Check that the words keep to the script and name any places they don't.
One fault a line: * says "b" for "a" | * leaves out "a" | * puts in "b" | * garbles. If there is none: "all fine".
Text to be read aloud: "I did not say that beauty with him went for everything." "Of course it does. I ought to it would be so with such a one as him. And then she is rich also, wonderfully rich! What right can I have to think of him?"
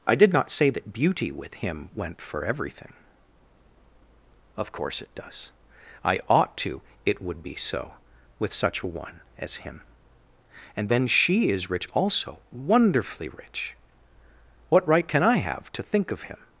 all fine